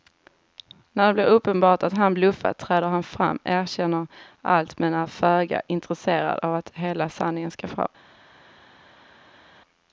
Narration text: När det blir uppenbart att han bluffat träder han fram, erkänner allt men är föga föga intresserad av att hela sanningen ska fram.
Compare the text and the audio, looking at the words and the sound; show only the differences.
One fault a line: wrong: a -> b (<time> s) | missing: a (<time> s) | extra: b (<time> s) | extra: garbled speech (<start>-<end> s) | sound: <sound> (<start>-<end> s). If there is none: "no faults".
missing: föga (5.6 s)